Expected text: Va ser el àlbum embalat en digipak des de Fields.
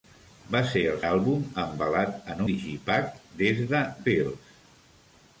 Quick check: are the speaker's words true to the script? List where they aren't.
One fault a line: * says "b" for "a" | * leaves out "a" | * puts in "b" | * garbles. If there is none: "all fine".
all fine